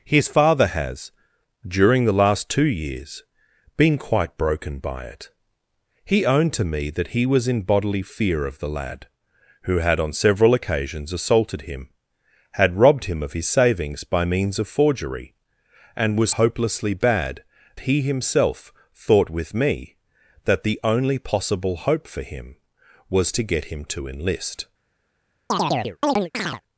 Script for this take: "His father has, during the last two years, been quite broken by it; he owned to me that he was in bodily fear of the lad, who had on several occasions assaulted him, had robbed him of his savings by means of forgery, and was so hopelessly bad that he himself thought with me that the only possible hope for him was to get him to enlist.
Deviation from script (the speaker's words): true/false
true